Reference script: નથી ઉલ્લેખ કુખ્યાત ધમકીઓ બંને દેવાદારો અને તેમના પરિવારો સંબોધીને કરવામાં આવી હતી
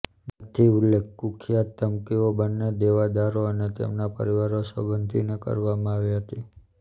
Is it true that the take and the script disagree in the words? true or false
false